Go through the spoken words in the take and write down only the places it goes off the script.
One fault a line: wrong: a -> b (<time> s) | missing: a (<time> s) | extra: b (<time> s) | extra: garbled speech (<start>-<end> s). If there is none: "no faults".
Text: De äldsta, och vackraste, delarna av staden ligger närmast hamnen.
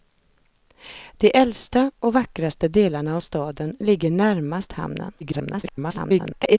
extra: garbled speech (5.2-6.6 s)